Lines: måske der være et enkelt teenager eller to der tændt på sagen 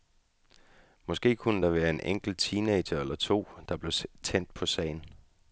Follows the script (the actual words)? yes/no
no